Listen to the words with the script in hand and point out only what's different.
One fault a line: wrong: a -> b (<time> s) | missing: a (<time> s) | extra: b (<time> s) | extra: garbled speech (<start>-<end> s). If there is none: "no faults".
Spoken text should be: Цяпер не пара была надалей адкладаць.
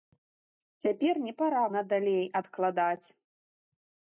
missing: была (1.6 s)